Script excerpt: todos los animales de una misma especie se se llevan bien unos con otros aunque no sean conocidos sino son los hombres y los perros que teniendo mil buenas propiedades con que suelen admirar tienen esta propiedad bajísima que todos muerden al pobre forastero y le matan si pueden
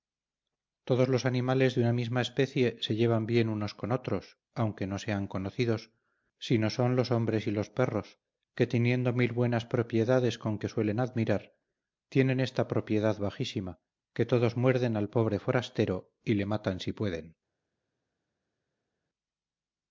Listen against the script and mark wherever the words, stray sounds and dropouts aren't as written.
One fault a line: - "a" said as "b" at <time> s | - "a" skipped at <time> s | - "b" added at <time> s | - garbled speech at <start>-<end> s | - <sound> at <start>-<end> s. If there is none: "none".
- "se" skipped at 3.0 s